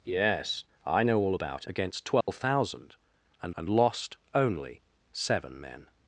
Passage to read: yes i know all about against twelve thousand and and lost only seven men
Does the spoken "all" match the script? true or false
true